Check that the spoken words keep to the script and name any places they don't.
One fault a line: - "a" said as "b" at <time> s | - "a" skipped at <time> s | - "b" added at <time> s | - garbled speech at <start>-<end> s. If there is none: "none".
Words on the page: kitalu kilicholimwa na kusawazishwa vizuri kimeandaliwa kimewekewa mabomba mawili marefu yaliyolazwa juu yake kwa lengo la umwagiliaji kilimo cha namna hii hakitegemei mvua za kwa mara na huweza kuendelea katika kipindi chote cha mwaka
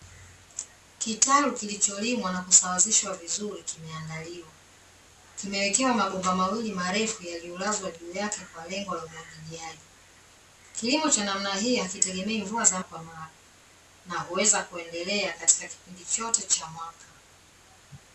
none